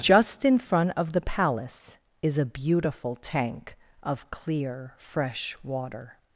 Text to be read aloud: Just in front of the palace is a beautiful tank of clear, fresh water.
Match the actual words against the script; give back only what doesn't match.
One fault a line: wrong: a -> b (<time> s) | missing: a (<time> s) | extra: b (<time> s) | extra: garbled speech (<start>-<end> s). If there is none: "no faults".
no faults